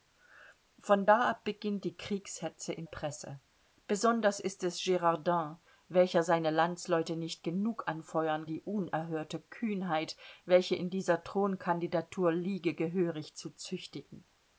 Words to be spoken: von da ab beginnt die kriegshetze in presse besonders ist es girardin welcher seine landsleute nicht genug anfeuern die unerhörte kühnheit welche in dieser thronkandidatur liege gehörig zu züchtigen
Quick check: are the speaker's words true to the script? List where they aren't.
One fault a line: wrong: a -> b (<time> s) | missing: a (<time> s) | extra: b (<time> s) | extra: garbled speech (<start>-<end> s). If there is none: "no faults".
no faults